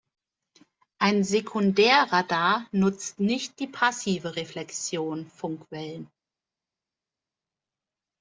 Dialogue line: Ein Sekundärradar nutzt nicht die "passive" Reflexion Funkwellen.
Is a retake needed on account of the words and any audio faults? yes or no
no